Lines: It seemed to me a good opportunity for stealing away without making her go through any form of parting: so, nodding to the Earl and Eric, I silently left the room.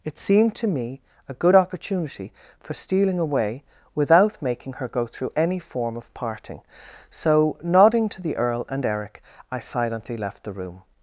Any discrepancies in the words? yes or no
no